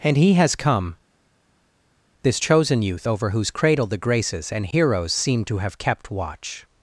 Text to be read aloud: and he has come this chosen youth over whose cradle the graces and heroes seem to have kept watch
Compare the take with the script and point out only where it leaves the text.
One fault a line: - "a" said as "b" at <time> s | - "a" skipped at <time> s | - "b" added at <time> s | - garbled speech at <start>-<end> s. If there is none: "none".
none